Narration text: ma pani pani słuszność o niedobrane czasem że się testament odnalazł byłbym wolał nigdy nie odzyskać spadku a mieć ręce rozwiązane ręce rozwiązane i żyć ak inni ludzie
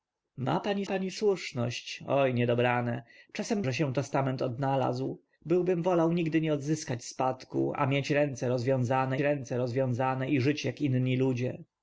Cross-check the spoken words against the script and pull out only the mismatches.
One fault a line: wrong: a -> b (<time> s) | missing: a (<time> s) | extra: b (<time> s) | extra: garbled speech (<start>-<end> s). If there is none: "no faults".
no faults